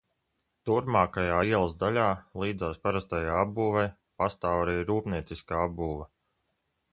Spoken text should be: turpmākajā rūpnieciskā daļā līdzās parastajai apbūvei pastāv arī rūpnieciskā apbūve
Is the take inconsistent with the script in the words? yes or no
yes